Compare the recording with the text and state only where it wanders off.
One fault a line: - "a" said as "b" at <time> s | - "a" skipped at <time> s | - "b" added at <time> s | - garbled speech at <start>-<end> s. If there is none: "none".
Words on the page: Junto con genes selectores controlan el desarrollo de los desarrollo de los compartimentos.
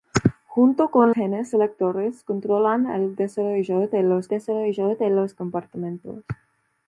none